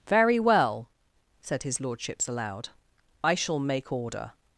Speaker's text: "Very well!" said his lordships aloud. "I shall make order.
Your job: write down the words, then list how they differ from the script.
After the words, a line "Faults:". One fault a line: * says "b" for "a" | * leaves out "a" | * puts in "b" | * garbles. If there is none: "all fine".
"Very well!" said his lordships aloud. "I shall make order.
Faults:
all fine